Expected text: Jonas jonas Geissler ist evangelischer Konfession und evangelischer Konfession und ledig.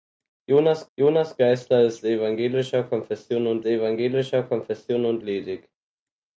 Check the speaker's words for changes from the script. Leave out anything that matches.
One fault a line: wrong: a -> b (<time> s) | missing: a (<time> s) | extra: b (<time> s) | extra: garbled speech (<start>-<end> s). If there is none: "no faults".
no faults